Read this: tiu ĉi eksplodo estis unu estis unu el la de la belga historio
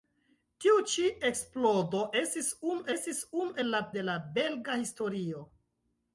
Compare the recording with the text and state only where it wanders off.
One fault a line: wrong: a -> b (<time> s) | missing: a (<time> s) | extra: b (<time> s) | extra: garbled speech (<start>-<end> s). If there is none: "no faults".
no faults